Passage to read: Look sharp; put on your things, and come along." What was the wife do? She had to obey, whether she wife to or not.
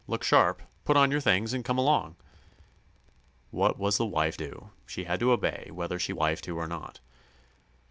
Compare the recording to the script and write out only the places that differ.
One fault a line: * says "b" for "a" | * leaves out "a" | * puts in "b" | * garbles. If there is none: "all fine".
all fine